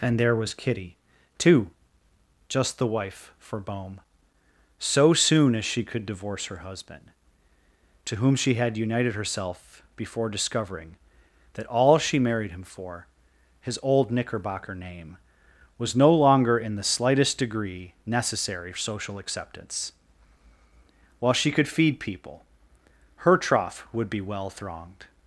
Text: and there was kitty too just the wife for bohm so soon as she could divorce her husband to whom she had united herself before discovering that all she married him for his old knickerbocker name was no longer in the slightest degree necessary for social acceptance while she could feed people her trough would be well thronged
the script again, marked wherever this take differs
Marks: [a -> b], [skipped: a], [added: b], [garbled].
and there was kitty too just the wife for bohm so soon as she could divorce her husband to whom she had united herself before discovering that all she married him for his old knickerbocker name was no longer in the slightest degree necessary [skipped: for] social acceptance while she could feed people her trough would be well thronged